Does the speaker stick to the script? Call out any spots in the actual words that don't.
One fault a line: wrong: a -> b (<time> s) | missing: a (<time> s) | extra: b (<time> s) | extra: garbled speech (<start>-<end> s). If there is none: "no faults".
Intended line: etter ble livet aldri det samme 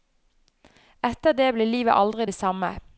extra: det (1.3 s)